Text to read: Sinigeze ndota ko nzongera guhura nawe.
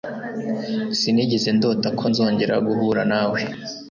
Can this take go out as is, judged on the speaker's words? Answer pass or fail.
pass